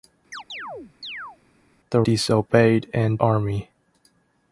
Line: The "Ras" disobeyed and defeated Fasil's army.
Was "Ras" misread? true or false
true